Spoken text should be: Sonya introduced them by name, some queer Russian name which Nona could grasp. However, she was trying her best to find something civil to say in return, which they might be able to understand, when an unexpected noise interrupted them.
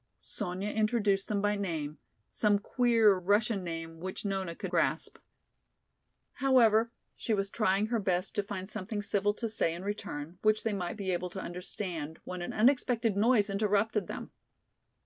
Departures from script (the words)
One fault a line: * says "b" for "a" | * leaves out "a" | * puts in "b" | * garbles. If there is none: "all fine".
all fine